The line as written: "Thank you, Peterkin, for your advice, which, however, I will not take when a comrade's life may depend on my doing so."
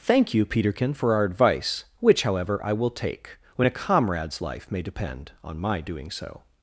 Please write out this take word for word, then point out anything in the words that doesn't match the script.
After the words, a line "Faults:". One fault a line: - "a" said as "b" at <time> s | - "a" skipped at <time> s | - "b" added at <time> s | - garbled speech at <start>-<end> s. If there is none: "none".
"Thank you, Peterkin, for our advice, which, however, I will take when a comrade's life may depend on my doing so."
Faults:
- "your" said as "our" at 1.1 s
- "not" skipped at 2.9 s